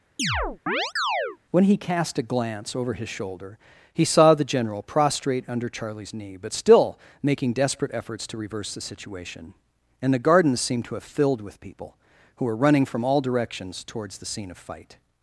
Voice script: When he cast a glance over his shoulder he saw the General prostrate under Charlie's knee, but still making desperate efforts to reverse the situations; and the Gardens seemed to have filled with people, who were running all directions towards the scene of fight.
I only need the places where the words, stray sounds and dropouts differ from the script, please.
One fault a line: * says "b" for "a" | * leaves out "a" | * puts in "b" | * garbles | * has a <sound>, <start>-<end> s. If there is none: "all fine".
* has a chirp, 0.2-1.4 s
* says "situation" for "situations"
* puts in "from"